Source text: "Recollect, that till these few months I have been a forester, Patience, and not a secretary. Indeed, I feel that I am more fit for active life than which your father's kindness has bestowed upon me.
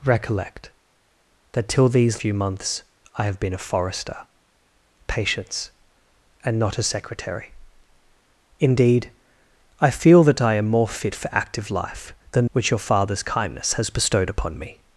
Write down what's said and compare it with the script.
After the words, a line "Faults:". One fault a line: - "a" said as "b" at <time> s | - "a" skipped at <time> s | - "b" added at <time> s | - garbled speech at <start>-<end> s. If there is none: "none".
"Recollect, that till these few months I have been a forester, Patience, and not a secretary. Indeed, I feel that I am more fit for active life than which your father's kindness has bestowed upon me.
Faults:
none